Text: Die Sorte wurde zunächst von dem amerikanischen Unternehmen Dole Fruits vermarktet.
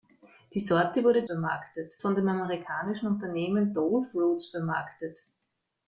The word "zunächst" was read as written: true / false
false